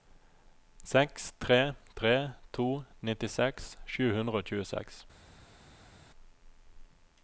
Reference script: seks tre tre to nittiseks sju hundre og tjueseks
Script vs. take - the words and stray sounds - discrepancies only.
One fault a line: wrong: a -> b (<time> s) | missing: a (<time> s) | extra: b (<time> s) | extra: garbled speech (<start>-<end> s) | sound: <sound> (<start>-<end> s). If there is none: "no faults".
no faults